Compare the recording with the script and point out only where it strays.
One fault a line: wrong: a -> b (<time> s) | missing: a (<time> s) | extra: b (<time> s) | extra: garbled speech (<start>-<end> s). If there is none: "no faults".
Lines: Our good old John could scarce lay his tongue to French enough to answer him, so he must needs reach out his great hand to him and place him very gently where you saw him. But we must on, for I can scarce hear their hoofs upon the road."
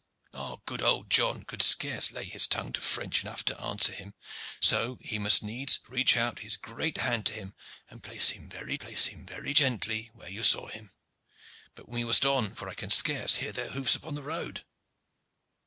extra: place him very (8.8 s)